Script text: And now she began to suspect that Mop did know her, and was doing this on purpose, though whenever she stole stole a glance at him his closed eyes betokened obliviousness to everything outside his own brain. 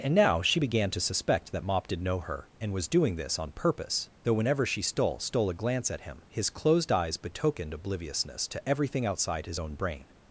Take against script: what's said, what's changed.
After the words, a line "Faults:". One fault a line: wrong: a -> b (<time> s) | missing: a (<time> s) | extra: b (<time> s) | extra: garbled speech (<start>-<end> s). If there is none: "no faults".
And now she began to suspect that Mop did know her, and was doing this on purpose, though whenever she stole stole a glance at him his closed eyes betokened obliviousness to everything outside his own brain.
Faults:
no faults